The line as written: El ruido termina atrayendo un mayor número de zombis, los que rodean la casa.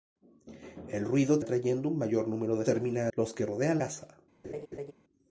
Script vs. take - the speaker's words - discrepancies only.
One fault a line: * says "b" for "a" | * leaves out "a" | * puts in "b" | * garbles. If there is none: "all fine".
* leaves out "termina"
* says "termina" for "zombis"
* leaves out "la"